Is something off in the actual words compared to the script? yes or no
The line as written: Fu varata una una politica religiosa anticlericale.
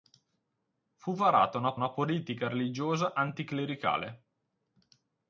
no